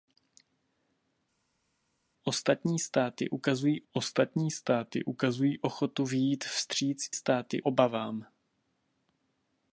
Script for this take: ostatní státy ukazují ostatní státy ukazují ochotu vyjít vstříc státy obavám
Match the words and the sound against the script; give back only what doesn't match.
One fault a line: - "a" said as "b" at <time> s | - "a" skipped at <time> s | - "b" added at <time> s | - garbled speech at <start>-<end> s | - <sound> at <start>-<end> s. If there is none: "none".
none